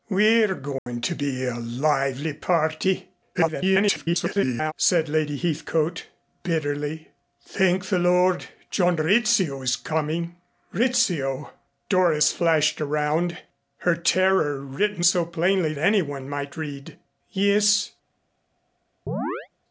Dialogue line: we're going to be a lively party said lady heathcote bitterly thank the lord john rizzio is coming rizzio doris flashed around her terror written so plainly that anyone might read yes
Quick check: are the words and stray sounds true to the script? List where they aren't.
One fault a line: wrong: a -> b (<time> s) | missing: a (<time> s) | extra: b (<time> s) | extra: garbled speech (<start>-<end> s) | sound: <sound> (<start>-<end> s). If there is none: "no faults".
sound: dropout (0.8-0.9 s)
extra: garbled speech (3.3-4.7 s)
missing: that (15.7 s)
sound: chirp (19.1-19.5 s)